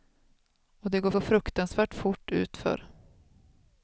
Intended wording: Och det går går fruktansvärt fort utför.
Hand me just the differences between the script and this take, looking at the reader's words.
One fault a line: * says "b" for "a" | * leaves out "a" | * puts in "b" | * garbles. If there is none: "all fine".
all fine